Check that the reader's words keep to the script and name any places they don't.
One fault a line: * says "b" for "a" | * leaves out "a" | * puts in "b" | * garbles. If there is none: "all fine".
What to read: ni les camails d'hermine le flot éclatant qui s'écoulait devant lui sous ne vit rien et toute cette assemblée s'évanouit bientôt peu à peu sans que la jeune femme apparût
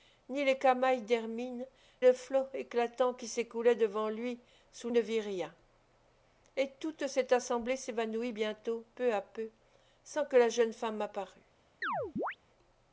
all fine